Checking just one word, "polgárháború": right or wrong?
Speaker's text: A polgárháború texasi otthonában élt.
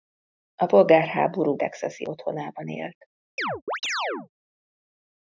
right